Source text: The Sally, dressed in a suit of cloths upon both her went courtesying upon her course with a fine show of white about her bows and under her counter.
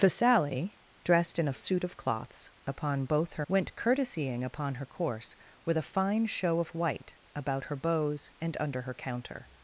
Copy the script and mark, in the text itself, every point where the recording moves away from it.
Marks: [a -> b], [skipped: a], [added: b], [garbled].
The Sally, dressed in a suit of cloths upon both her went courtesying upon her course with a fine show of white about her bows and under her counter.